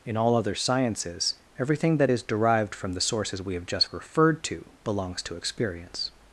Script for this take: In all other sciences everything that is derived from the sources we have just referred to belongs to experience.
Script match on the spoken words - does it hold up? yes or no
yes